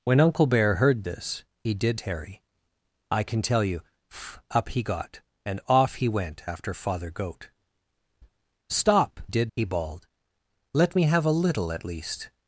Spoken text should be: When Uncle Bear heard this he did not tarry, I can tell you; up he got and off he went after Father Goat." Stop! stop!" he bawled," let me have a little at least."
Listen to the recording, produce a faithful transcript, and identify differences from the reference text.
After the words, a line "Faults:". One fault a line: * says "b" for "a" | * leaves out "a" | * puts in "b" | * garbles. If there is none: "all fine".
When Uncle Bear heard this he did tarry, I can tell you; up he got and off he went after Father Goat." Stop! did!" he bawled," let me have a little at least."
Faults:
* leaves out "not"
* says "did" for "stop"